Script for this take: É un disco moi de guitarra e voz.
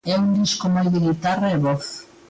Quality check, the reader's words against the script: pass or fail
pass